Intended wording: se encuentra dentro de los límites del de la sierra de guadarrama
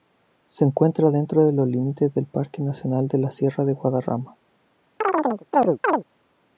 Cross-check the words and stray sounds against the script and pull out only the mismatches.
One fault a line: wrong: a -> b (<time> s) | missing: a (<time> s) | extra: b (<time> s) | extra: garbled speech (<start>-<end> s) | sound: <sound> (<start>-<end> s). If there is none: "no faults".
extra: parque nacional (2.2 s)
sound: chirp (5.0-6.0 s)